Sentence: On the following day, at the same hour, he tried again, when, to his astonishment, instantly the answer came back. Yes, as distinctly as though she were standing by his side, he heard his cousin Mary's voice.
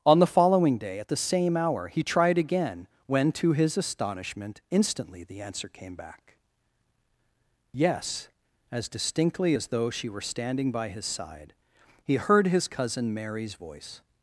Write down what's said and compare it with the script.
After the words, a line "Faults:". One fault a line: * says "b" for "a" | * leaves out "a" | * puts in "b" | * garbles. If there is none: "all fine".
On the following day, at the same hour, he tried again, when, to his astonishment, instantly the answer came back. Yes, as distinctly as though she were standing by his side, he heard his cousin Mary's voice.
Faults:
all fine